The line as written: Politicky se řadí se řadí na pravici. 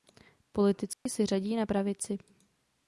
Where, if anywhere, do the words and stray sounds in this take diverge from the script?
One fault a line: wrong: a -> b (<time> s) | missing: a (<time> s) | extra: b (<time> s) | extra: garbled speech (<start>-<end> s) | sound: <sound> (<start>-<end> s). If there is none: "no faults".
sound: dropout (0.9-1.1 s)
missing: se řadí (1.6 s)